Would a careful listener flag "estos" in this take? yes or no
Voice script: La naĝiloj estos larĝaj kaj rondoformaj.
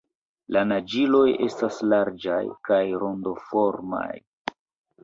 yes